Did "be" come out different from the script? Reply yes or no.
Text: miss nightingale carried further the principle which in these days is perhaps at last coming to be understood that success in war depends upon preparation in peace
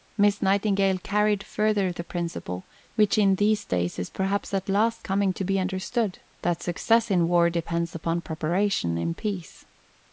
no